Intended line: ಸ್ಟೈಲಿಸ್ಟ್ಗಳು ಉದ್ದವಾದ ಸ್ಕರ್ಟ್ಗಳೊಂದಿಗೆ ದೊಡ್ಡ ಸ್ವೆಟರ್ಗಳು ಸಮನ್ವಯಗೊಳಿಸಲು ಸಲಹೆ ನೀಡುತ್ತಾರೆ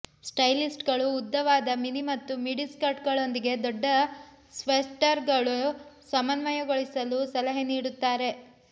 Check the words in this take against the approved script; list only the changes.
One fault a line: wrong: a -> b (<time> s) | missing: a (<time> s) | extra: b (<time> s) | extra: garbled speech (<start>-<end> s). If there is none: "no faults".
extra: ಮಿನಿ ಮತ್ತು ಮಿಡಿ (1.8 s)